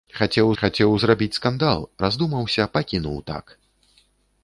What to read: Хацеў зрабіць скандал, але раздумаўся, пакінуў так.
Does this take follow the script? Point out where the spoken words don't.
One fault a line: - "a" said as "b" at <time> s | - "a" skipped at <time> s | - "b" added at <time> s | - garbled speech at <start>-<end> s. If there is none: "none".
- "хацеў" added at 0.6 s
- "але" skipped at 1.9 s